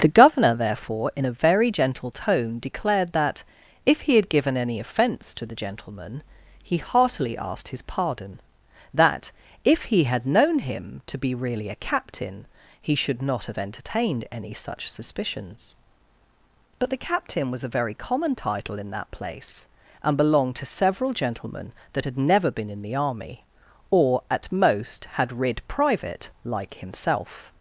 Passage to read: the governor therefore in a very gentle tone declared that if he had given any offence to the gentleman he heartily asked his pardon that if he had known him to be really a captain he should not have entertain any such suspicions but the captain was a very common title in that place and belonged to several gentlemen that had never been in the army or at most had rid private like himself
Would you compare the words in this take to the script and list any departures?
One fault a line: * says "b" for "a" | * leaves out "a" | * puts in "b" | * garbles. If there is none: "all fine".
* says "entertained" for "entertain"